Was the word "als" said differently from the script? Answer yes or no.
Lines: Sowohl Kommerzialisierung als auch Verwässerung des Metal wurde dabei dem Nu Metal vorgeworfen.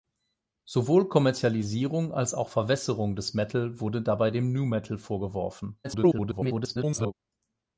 no